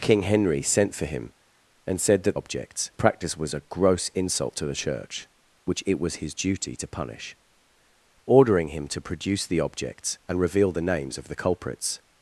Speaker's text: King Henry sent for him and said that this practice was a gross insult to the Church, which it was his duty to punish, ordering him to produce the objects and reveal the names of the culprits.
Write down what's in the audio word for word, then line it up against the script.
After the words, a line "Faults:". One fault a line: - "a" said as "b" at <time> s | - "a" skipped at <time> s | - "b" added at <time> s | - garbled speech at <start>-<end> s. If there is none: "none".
King Henry sent for him and said that objects practice was a gross insult to the Church, which it was his duty to punish, ordering him to produce the objects and reveal the names of the culprits.
Faults:
- "this" said as "objects" at 2.3 s